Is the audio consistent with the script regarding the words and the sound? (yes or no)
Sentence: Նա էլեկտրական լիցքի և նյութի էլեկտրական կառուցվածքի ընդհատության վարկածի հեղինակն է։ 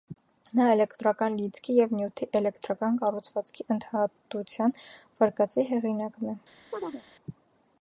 no